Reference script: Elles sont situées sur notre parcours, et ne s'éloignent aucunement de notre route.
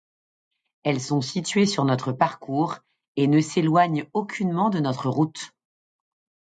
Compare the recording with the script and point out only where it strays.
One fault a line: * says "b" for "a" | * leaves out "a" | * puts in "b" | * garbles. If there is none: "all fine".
all fine